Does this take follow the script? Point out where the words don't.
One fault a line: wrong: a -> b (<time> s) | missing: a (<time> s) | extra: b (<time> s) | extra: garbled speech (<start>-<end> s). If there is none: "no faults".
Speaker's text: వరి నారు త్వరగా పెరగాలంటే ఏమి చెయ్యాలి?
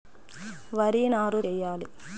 missing: త్వరగా పెరగాలంటే ఏమి (1.4 s)